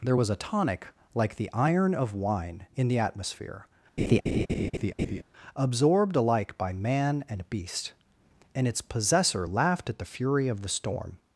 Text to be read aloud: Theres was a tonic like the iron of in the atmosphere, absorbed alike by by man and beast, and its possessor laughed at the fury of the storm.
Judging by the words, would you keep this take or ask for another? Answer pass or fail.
fail